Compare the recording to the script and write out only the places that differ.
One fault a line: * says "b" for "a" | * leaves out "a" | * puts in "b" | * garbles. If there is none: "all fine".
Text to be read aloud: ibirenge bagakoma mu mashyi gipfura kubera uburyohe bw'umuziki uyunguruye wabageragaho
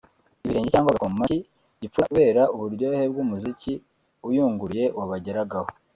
* puts in "cyangwa"